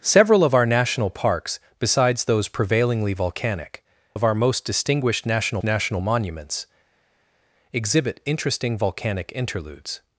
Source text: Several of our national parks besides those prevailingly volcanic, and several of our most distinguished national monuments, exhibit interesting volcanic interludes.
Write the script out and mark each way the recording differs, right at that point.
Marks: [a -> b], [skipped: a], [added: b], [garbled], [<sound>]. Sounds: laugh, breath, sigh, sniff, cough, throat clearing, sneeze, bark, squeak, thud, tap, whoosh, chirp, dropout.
Several of our national parks besides those prevailingly volcanic, [skipped: and several] of our most distinguished national [added: national] monuments, exhibit interesting volcanic interludes.